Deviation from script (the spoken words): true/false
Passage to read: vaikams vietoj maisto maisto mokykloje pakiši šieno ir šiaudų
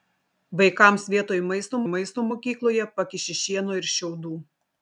false